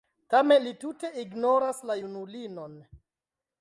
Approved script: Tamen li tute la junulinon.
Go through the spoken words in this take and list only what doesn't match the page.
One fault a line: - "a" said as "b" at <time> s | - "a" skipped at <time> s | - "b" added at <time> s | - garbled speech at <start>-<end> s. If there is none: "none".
- "ignoras" added at 1.2 s